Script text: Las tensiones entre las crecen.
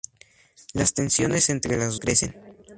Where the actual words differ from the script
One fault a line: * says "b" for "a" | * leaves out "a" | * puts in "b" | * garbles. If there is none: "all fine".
all fine